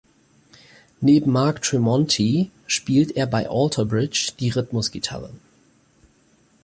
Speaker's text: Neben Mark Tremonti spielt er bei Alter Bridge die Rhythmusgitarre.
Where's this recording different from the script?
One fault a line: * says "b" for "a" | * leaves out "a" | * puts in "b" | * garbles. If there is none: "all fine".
all fine